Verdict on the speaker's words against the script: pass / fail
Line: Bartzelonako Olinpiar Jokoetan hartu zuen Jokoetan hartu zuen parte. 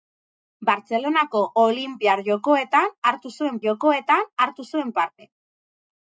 pass